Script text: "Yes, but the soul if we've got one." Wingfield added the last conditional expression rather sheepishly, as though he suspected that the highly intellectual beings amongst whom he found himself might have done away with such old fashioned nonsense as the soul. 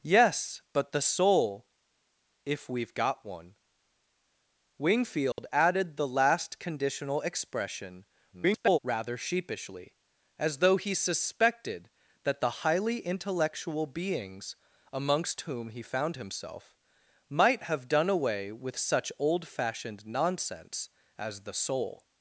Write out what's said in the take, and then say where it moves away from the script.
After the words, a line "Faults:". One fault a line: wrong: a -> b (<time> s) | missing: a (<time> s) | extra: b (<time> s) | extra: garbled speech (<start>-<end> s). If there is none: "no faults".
"Yes, but the soul if we've got one." Wingfield added the last conditional expression [garbled] rather sheepishly, as though he suspected that the highly intellectual beings amongst whom he found himself might have done away with such old fashioned nonsense as the soul.
Faults:
extra: garbled speech (8.3-8.8 s)